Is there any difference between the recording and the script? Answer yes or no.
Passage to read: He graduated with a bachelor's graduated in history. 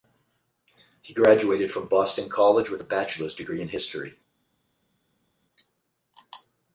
yes